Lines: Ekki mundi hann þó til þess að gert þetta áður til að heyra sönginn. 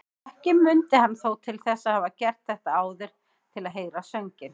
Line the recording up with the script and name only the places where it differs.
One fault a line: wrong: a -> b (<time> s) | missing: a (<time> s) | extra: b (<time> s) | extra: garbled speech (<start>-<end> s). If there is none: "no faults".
extra: hafa (2.0 s)